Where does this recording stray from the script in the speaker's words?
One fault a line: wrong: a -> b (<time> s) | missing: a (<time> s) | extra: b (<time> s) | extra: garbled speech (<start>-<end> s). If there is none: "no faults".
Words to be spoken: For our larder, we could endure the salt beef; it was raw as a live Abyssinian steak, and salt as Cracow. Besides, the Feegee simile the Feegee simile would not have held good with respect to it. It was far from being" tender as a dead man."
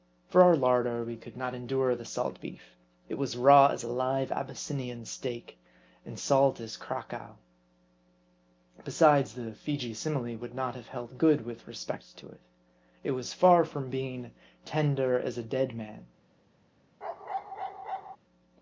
extra: not (1.4 s)
missing: the Feegee simile (10.4 s)